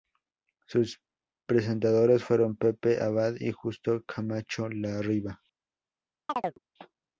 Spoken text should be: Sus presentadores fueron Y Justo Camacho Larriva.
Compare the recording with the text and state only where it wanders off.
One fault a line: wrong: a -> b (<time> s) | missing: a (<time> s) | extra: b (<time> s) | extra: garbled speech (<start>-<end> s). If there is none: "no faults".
extra: Pepe Abad (2.6 s)